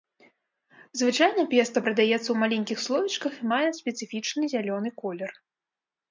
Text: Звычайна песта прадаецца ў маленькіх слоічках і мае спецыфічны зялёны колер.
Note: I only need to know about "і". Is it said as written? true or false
true